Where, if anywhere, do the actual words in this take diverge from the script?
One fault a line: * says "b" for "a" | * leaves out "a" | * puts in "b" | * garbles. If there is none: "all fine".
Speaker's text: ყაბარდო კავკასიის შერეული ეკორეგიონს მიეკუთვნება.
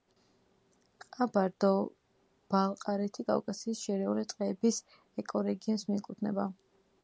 * puts in "ბალყარეთი"
* puts in "ტყეების"